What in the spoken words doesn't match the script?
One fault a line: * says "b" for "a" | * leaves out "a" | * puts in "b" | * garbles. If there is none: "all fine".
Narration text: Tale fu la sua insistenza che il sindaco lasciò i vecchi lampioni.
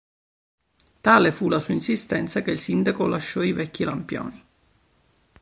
all fine